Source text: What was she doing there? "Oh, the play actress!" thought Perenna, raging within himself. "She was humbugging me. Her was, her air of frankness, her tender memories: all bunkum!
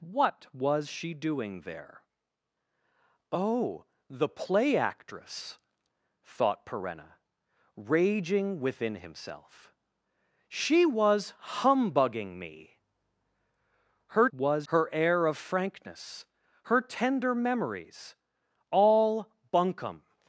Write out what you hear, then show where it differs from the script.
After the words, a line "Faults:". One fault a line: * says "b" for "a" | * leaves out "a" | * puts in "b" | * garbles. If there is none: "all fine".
What was she doing there? "Oh, the play actress!" thought Perenna, raging within himself. "She was humbugging me. Her was, her air of frankness, her tender memories: all bunkum!
Faults:
all fine